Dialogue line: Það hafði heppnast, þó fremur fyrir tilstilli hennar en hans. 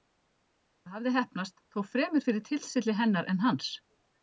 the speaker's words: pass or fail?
pass